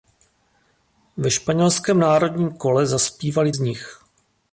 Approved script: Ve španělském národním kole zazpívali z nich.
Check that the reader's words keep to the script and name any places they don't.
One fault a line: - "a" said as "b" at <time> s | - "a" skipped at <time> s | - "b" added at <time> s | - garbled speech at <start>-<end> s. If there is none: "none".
none